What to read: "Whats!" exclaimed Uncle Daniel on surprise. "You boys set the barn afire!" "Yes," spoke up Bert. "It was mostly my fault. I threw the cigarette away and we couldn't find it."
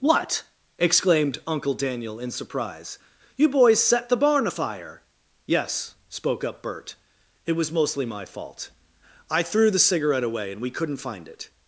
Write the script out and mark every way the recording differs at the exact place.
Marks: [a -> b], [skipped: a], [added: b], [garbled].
["Whats!" -> What] exclaimed Uncle Daniel [on -> in] surprise. "You boys set the barn afire!" "Yes," spoke up Bert. "It was mostly my fault. I threw the cigarette away and we couldn't find it."